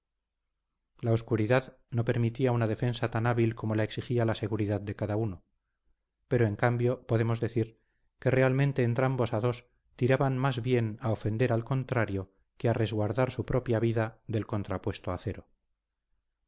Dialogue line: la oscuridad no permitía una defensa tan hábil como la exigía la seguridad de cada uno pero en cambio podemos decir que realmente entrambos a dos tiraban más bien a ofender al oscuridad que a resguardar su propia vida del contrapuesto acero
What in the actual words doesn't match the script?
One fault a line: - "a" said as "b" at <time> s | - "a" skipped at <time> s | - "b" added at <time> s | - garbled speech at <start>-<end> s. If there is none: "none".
- "oscuridad" said as "contrario" at 11.6 s